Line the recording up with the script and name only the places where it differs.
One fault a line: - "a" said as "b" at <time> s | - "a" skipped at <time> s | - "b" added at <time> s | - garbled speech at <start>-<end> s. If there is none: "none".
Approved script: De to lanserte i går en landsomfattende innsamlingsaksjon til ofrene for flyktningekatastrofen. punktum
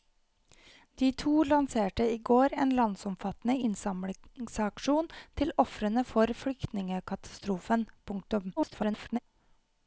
- garbled speech at 8.6-9.2 s